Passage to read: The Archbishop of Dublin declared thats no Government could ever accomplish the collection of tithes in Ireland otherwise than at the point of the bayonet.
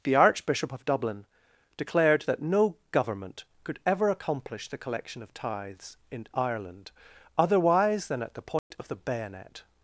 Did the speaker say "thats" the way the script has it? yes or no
no